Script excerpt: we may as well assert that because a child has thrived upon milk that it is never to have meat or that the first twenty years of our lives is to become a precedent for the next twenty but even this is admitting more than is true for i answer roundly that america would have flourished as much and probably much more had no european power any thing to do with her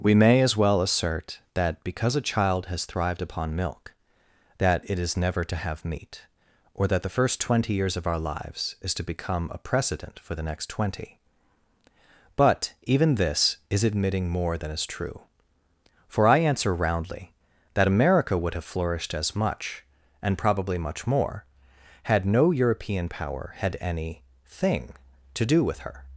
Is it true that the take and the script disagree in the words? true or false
true